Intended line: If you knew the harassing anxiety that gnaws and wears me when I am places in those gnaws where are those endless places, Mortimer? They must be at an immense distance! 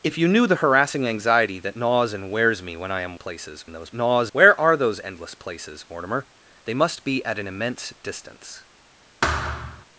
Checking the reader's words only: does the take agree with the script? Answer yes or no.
yes